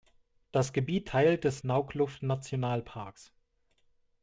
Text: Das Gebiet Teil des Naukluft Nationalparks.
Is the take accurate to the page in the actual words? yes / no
yes